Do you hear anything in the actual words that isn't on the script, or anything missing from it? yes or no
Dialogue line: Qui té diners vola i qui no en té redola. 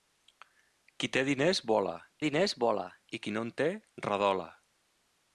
yes